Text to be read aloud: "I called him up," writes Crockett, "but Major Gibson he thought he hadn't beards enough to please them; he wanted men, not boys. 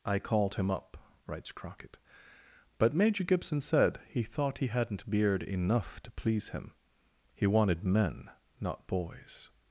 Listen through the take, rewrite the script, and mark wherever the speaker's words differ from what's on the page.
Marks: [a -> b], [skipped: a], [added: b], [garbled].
"I called him up," writes Crockett, "but Major Gibson [added: said] he thought he hadn't [beards -> beard] enough to please [them; -> him] he wanted men, not boys.